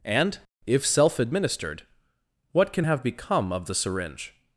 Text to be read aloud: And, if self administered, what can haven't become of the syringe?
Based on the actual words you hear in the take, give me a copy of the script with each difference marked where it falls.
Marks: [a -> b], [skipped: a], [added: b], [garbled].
And, if self administered, what can [haven't -> have] become of the syringe?